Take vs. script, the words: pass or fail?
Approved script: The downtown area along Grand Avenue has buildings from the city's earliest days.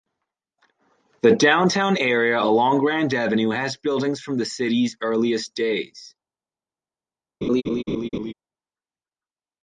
pass